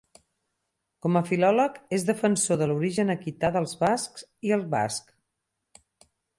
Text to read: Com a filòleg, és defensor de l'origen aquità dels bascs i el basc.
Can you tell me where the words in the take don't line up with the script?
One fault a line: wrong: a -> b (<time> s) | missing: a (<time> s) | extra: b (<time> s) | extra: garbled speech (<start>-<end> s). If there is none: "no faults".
no faults